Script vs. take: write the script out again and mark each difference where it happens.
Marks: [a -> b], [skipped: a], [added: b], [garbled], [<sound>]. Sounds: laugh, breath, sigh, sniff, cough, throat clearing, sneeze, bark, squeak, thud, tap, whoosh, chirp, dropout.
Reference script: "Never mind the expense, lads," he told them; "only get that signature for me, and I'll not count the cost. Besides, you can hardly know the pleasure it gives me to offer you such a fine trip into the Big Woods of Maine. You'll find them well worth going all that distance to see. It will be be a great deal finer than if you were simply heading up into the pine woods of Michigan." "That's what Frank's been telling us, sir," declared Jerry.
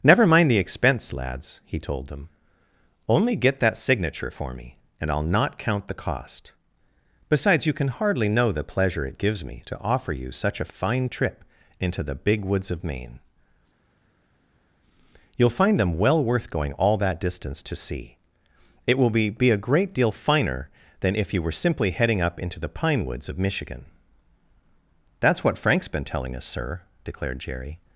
"Never mind the expense, lads," he told them; "only get that signature for me, and I'll not count the cost. Besides, you can hardly know the pleasure it gives me to offer you such a fine trip into the Big Woods of Maine. You'll find them well worth going all that distance to see. It will be be a great deal finer than if you were simply heading up into the pine woods of Michigan." "That's what Frank's been telling us, sir," declared Jerry.